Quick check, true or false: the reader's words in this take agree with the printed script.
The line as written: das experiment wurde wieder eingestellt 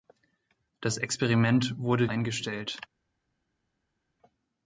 false